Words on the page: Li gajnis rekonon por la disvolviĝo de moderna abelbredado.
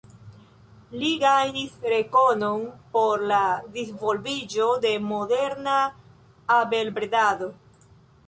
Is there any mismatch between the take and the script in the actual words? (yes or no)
no